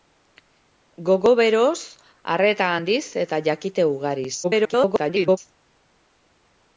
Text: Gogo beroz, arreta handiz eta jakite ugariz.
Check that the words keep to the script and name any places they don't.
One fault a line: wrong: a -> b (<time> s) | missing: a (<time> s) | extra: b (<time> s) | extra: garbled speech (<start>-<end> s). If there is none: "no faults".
extra: garbled speech (4.4-5.4 s)